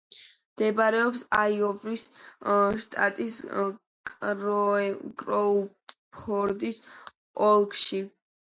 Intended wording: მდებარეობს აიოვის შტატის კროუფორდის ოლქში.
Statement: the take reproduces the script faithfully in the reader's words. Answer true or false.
true